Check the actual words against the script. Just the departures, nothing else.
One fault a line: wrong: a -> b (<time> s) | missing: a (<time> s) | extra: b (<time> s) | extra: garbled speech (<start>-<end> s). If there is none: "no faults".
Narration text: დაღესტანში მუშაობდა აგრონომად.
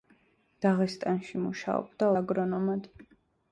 no faults